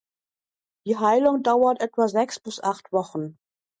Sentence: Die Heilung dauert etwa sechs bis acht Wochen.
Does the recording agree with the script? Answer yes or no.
yes